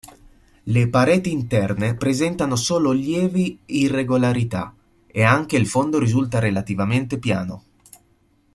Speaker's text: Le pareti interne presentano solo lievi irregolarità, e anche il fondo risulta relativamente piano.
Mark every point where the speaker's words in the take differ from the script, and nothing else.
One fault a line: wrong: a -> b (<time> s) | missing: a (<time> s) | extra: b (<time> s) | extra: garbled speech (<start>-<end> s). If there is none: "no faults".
no faults